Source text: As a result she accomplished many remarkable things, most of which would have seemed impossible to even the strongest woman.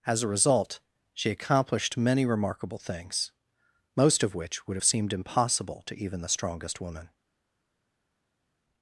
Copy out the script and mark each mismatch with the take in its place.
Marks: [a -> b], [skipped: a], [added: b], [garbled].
As a result she accomplished many remarkable things, most of which would have seemed impossible to even the strongest woman.